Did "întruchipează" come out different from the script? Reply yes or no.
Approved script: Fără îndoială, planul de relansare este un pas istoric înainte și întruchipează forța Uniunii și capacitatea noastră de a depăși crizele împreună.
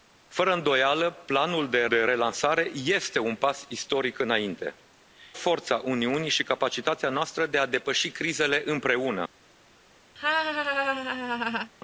yes